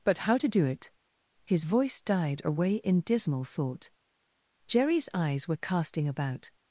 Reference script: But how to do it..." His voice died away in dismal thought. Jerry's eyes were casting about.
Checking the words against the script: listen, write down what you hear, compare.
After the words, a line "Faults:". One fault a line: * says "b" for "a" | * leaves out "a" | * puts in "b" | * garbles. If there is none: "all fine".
But how to do it..." His voice died away in dismal thought. Jerry's eyes were casting about.
Faults:
all fine